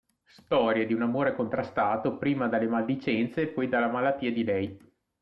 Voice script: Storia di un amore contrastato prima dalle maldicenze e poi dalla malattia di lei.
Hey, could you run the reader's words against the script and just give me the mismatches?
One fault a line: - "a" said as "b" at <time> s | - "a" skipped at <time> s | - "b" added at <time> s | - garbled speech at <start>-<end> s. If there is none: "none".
none